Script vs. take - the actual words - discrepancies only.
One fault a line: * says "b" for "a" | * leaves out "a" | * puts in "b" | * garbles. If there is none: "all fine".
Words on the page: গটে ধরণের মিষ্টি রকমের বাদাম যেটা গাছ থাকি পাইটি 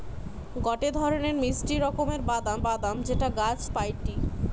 * puts in "বাদাম"
* leaves out "থাকি"